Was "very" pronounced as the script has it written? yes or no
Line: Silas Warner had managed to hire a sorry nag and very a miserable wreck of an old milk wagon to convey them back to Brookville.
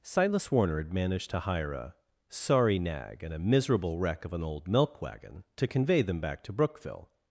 no